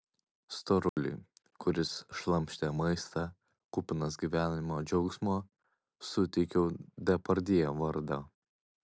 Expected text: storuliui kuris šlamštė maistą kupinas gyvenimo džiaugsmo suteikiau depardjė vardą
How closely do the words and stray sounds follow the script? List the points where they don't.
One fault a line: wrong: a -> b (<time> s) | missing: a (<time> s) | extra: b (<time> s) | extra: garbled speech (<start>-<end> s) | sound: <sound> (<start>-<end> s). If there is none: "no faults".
sound: dropout (0.9-1.0 s)